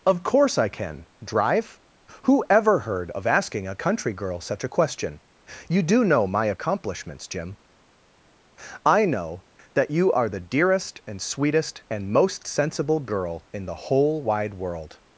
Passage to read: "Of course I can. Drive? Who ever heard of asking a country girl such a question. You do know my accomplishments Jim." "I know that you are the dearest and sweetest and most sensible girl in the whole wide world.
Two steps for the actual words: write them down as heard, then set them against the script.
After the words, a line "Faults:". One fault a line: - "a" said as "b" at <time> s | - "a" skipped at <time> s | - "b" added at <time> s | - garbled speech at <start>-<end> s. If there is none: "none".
"Of course I can. Drive? Who ever heard of asking a country girl such a question. You do know my accomplishments Jim." "I know that you are the dearest and sweetest and most sensible girl in the whole wide world.
Faults:
none